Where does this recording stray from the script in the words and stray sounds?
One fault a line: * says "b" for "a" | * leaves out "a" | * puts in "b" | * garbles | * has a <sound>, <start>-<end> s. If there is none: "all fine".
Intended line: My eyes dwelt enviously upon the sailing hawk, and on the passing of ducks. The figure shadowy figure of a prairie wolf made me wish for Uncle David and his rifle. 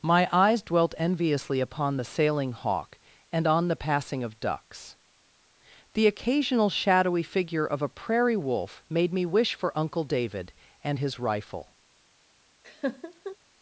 * says "occasional" for "figure"
* has a laugh, 12.6-13.4 s